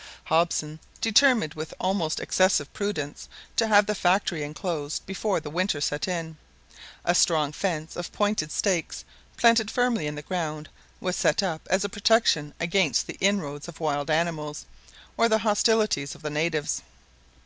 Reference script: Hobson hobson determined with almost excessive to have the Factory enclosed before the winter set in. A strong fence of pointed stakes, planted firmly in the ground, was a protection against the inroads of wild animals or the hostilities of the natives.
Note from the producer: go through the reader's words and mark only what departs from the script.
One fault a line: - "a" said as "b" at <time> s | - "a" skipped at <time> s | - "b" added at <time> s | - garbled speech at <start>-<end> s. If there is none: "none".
- "hobson" skipped at 0.8 s
- "prudence" added at 2.7 s
- "set up as" added at 11.2 s